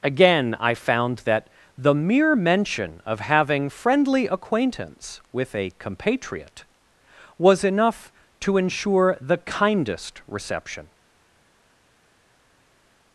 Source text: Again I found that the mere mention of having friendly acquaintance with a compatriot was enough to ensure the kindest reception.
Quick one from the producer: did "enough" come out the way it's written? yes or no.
yes